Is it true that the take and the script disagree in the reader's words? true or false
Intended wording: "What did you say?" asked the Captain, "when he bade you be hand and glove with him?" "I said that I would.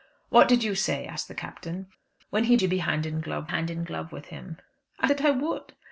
true